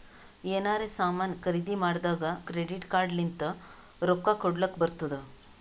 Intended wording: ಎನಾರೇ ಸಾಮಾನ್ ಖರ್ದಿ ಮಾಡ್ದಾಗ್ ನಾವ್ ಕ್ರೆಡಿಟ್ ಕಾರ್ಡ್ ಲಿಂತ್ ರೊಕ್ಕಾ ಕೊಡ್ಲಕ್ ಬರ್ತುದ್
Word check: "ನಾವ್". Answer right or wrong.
wrong